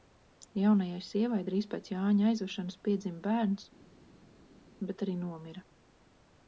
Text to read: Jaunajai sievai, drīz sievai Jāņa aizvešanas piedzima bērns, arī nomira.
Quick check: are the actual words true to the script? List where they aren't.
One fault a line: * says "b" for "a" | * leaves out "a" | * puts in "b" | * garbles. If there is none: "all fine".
* says "pēc" for "sievai"
* puts in "bet"